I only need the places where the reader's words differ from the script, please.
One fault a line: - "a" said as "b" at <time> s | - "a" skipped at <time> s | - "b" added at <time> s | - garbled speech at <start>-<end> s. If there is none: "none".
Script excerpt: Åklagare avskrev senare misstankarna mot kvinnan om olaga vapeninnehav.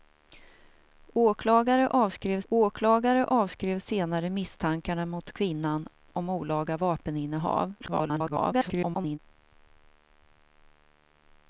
- "åklagare avskrev" added at 2.5 s
- garbled speech at 7.8-9.2 s